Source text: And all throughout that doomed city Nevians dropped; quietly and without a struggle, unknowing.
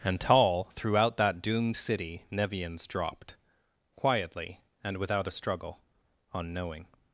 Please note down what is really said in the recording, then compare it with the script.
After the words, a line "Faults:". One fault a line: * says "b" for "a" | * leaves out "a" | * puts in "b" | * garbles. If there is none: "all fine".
And tall throughout that doomed city Nevians dropped; quietly and without a struggle, unknowing.
Faults:
* says "tall" for "all"